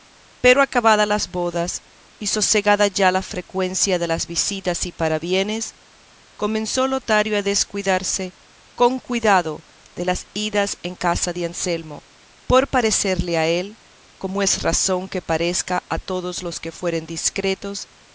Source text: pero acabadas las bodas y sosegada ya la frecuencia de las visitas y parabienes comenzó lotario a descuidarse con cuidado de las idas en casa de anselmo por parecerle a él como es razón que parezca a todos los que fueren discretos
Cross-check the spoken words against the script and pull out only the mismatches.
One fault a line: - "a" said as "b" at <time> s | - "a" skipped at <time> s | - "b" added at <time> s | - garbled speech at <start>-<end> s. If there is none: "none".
none